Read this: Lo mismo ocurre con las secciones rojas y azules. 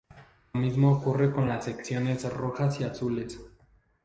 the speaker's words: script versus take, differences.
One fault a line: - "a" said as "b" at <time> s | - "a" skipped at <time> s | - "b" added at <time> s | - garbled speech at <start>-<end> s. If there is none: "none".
none